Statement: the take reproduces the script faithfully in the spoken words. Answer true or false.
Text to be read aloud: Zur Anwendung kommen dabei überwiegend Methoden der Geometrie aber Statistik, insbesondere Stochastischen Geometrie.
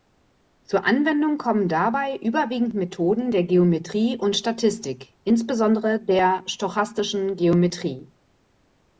false